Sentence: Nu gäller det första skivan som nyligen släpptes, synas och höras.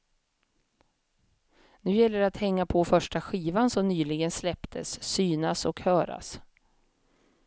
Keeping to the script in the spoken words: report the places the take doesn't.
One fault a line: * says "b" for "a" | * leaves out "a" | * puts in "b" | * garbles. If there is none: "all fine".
* puts in "att hänga på"